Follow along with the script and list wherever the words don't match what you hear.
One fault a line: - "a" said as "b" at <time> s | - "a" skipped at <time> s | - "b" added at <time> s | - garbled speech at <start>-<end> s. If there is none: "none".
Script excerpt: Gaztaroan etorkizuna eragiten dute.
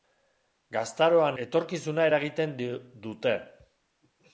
none